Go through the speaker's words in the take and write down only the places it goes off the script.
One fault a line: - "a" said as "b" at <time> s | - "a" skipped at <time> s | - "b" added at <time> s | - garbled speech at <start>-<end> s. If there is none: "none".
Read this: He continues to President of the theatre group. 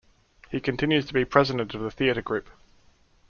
- "be" added at 1.1 s